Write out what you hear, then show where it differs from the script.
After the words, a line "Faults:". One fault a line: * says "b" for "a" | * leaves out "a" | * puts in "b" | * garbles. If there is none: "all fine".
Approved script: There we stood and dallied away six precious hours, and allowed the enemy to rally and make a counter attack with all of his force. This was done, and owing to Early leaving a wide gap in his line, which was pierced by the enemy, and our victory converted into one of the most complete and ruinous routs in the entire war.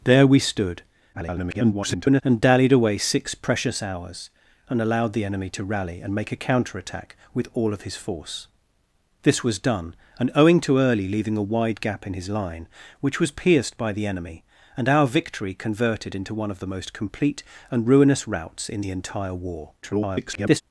There we stood [garbled] and dallied away six precious hours, and allowed the enemy to rally and make a counter attack with all of his force. This was done, and owing to Early leaving a wide gap in his line, which was pierced by the enemy, and our victory converted into one of the most complete and ruinous routs in the entire war. [garbled]
Faults:
* garbles
* garbles